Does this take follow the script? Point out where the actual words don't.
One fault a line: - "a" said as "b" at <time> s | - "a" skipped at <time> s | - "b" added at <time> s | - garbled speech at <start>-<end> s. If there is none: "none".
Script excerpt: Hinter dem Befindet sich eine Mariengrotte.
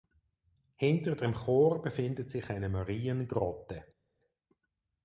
- "Chor" added at 1.4 s